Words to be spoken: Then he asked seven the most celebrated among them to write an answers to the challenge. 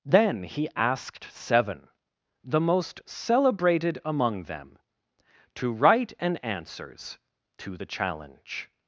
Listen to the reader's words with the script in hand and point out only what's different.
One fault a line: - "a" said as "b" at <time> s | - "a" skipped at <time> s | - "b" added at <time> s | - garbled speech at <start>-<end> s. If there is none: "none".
none